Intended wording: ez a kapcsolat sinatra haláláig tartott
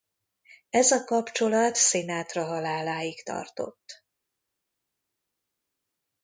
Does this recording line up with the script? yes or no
yes